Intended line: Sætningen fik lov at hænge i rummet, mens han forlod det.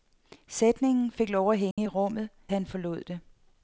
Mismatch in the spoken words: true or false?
true